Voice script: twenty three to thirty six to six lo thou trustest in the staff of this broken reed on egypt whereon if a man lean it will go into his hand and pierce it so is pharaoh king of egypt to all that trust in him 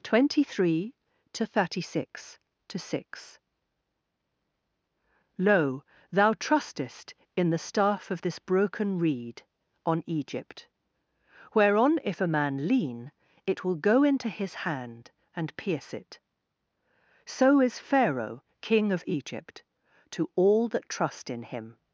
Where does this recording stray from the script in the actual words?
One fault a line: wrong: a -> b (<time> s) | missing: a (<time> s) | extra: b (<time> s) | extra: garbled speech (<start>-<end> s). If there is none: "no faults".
no faults